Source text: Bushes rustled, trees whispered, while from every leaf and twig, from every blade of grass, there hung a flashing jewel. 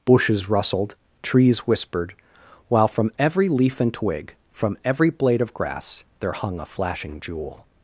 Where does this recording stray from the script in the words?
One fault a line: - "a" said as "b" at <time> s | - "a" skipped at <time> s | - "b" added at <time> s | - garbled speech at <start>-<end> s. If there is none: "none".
none